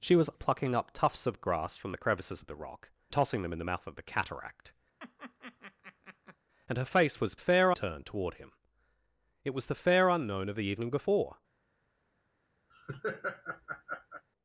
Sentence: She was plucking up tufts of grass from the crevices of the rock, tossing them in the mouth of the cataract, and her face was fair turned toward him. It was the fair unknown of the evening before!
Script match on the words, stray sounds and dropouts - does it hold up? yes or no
no